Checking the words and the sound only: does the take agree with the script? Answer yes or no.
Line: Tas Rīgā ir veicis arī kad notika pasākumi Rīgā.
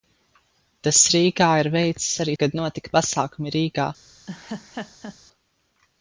no